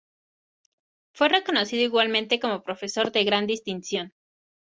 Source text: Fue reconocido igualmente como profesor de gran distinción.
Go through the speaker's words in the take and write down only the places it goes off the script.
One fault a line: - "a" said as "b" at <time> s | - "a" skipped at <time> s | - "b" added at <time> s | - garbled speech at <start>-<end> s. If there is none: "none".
none